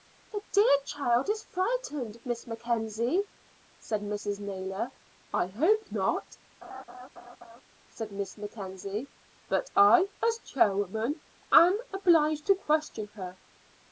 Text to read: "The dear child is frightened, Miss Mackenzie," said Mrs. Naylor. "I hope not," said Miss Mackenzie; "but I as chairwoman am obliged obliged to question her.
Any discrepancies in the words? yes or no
yes